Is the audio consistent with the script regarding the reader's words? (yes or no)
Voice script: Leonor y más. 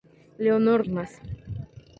yes